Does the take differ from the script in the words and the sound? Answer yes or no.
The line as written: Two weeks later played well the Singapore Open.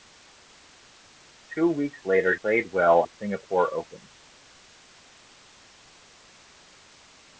no